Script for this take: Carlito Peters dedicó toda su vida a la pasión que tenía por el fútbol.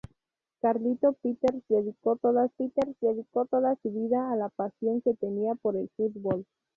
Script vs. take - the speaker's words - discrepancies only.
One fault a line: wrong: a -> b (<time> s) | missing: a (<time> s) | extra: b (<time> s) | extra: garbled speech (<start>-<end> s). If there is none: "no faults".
extra: Peters dedicó toda (2.5 s)